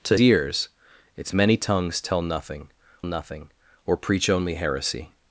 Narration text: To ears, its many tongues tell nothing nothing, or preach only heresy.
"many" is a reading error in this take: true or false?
false